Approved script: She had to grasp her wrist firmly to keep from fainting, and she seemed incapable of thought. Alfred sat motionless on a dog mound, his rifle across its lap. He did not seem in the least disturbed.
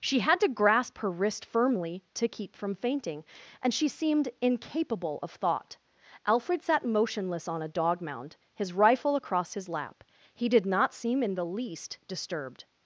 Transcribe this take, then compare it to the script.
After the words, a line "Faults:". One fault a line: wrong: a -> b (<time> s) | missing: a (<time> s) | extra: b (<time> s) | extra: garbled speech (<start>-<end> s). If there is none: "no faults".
She had to grasp her wrist firmly to keep from fainting, and she seemed incapable of thought. Alfred sat motionless on a dog mound, his rifle across his lap. He did not seem in the least disturbed.
Faults:
wrong: its -> his (9.5 s)